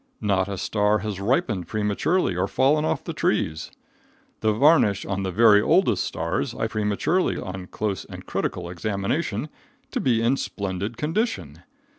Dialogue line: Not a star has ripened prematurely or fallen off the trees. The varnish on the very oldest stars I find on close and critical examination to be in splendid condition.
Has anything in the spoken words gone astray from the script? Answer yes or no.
yes